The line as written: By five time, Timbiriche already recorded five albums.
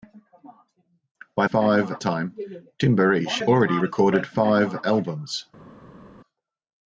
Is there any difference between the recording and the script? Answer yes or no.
no